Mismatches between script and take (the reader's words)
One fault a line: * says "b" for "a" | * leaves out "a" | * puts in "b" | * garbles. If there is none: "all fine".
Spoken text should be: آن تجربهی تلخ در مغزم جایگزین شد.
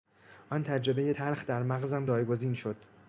all fine